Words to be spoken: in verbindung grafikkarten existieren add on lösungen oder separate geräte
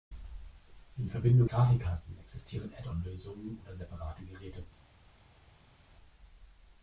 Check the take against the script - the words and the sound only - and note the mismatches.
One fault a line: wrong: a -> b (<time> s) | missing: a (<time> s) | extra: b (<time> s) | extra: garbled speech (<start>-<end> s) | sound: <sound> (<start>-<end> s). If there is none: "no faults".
no faults